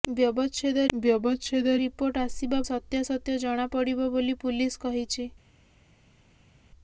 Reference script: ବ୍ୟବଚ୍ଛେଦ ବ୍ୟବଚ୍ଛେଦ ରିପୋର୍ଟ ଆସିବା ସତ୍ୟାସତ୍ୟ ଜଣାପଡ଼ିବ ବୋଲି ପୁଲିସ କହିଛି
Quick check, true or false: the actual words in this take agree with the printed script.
true